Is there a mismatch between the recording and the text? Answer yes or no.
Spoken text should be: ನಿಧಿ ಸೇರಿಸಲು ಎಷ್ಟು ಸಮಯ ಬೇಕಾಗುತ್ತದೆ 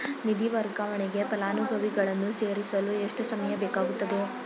yes